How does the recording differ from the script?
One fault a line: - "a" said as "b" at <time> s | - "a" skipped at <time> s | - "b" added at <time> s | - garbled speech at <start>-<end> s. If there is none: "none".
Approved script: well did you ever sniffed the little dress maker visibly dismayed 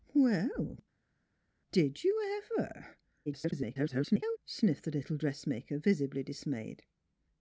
- garbled speech at 3.3-4.4 s